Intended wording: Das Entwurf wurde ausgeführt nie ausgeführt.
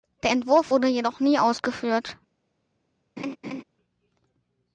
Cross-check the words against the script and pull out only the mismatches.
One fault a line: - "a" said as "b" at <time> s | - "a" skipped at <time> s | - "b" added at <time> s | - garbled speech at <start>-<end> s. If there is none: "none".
- "Das" said as "Der" at 0.2 s
- "ausgeführt" said as "jedoch" at 0.9 s